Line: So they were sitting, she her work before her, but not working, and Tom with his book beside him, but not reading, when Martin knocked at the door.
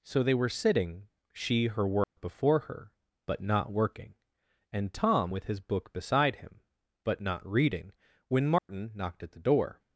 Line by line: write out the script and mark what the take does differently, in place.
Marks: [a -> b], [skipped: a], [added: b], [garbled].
So they were sitting, she her work before her, but not working, and Tom with his book beside him, but not reading, when Martin knocked at the door.